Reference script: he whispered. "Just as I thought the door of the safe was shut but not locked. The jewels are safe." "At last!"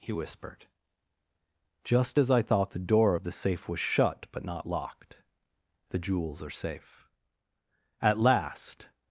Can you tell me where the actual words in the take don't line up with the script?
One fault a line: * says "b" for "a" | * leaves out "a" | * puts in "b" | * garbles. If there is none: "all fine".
all fine